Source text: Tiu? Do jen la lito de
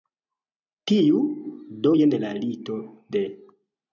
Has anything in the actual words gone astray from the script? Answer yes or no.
no